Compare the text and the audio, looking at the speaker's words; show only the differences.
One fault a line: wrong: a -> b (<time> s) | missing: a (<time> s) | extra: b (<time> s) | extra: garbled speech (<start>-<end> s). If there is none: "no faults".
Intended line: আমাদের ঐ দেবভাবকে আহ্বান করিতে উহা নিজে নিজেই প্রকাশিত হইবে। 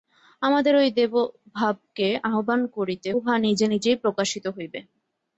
no faults